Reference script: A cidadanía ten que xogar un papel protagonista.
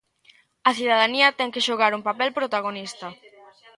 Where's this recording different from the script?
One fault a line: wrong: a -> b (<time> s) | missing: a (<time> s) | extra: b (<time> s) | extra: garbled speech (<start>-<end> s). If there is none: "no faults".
no faults